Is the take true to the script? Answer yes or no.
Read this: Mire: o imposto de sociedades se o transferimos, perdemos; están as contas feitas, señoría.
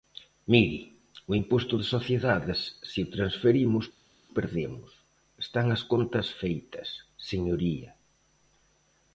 yes